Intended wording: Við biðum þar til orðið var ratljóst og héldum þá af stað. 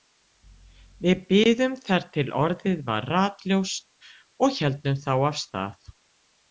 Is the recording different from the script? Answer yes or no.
no